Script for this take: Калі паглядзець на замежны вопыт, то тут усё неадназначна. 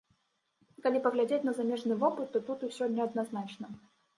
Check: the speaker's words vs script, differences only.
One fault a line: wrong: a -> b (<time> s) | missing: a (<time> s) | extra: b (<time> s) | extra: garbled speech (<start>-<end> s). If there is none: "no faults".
no faults